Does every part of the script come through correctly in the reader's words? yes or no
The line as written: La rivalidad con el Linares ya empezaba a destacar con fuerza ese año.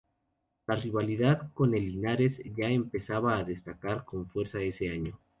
yes